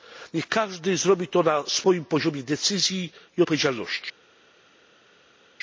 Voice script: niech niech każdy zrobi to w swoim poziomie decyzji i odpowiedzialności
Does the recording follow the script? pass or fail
fail